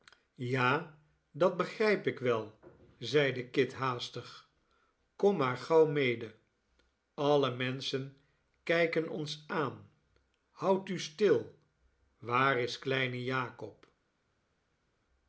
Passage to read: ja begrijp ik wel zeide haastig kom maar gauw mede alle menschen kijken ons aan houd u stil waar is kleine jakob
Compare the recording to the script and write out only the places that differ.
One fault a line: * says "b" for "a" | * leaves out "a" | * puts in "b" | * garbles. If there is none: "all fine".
* puts in "dat"
* puts in "kit"